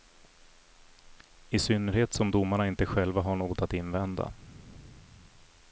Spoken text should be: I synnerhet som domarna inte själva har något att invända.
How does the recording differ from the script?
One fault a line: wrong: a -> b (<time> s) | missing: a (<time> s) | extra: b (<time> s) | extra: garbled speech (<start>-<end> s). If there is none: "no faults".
no faults